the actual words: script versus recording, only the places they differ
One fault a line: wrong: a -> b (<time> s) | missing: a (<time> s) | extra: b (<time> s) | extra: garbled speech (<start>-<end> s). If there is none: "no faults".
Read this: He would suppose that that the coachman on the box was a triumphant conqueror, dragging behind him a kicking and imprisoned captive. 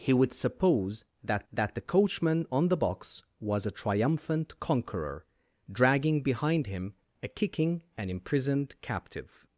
no faults